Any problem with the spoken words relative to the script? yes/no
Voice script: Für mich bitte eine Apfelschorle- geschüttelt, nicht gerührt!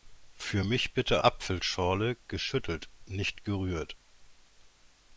yes